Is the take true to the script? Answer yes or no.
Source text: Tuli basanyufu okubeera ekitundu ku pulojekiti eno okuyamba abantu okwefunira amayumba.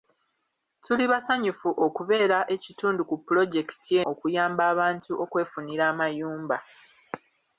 no